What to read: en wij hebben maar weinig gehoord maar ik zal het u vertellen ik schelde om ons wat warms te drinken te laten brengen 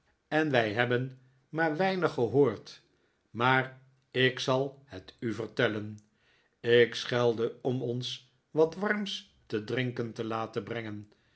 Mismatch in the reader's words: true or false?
false